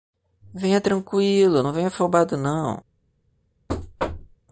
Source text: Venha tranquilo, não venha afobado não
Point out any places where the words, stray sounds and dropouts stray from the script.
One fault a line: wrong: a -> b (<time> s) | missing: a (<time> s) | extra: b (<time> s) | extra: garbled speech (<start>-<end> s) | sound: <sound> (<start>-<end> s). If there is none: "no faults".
sound: thud (3.7-4.4 s)